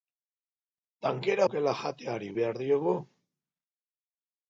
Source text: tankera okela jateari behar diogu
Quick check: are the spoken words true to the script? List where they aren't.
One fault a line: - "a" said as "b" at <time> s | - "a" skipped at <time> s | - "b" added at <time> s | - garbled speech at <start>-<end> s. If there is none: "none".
none